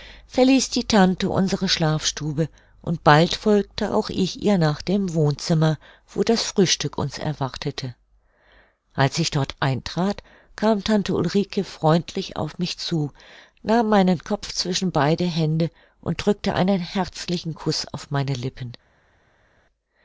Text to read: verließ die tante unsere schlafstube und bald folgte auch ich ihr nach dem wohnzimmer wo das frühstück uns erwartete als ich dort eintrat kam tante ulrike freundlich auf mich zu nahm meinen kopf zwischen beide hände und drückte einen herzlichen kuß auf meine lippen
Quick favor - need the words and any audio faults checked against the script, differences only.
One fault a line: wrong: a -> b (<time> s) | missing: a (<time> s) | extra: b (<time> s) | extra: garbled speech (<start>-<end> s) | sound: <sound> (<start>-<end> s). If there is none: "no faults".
no faults